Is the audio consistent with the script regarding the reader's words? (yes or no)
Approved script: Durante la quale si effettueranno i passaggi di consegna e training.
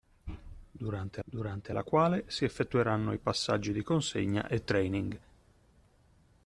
no